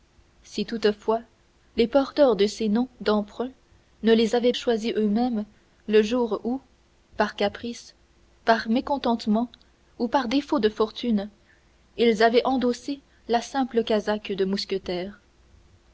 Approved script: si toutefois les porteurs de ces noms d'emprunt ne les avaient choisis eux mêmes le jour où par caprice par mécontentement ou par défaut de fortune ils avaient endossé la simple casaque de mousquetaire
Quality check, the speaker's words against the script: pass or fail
pass